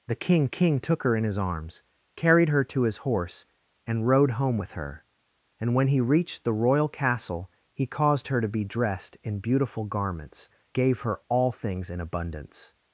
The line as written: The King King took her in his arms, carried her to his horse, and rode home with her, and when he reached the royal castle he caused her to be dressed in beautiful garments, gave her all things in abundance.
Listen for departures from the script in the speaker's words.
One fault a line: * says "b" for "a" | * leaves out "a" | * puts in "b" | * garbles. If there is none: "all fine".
all fine